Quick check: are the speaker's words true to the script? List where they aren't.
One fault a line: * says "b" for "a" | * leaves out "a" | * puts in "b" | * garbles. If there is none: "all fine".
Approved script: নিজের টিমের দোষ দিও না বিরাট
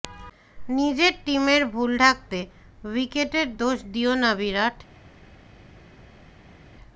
* puts in "ভুল ঢাকতে উইকেটের"